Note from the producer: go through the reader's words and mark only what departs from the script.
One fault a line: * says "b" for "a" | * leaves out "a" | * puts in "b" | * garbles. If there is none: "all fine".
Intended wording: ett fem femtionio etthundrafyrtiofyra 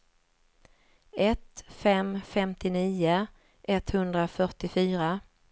all fine